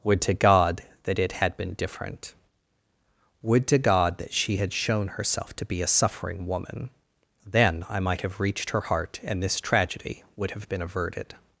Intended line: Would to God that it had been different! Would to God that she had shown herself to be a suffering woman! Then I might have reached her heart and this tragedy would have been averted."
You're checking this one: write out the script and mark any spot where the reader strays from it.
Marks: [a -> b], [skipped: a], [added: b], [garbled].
Would to God that it had been different! Would to God that she had shown herself to be a suffering woman! Then I might have reached her heart and this tragedy would have been averted."